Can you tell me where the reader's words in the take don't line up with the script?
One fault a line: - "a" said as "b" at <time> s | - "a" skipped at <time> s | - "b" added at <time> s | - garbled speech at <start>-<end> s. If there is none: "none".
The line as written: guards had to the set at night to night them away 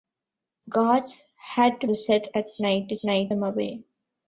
none